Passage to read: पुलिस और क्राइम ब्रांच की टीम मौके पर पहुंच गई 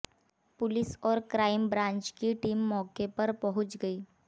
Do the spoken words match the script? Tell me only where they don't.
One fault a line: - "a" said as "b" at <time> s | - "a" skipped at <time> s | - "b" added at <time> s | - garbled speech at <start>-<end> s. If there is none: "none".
none